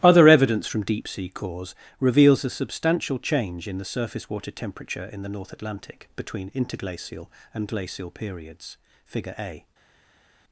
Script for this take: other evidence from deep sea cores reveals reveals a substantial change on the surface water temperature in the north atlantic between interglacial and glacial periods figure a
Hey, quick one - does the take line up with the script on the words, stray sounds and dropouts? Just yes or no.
no